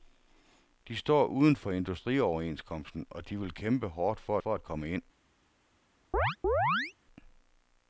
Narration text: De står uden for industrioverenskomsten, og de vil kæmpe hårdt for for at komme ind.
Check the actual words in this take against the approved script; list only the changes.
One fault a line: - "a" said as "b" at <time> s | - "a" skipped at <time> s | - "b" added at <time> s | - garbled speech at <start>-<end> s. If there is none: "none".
none